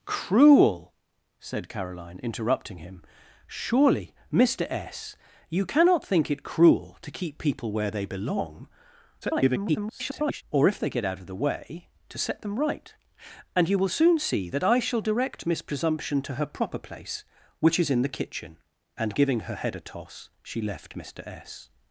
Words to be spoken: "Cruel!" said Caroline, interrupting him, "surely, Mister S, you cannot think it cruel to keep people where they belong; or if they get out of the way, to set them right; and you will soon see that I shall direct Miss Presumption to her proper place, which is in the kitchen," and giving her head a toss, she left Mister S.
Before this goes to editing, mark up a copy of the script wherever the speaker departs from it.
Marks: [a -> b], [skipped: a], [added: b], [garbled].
"Cruel!" said Caroline, interrupting him, "surely, Mister S, you cannot think it cruel to keep people where they belong; [garbled] or if they get out of the way, to set them right; and you will soon see that I shall direct Miss Presumption to her proper place, which is in the kitchen," and giving her head a toss, she left Mister S.